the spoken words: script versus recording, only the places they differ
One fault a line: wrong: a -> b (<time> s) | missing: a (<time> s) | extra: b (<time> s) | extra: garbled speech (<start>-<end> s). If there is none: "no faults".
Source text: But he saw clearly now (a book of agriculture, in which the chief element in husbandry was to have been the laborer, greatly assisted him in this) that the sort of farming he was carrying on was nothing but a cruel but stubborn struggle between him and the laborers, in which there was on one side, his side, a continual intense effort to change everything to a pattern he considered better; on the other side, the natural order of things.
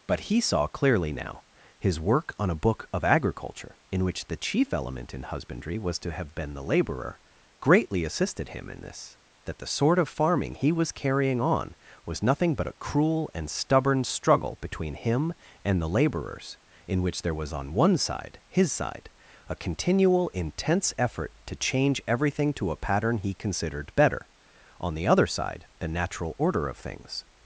extra: his work on (1.8 s)
wrong: but -> and (13.3 s)